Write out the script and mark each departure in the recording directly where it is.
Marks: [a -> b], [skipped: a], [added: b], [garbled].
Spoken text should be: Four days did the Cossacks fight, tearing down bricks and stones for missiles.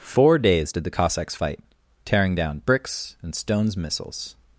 Four days did the Cossacks fight, tearing down bricks and stones [skipped: for] missiles.